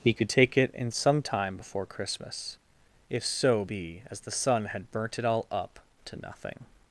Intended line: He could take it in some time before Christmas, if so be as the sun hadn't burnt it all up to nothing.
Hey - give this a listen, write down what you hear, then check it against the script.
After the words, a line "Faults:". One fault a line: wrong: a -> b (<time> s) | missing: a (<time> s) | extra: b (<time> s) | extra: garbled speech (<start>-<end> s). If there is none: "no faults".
He could take it in some time before Christmas, if so be as the sun had burnt it all up to nothing.
Faults:
wrong: hadn't -> had (4.7 s)